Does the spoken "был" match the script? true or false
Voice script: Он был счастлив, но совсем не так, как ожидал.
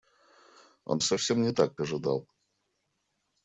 false